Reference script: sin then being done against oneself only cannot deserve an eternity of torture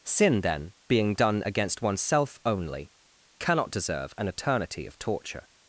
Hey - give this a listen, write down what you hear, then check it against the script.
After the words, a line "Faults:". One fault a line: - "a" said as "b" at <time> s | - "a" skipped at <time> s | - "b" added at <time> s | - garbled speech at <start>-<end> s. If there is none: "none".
sin then being done against oneself only cannot deserve an eternity of torture
Faults:
none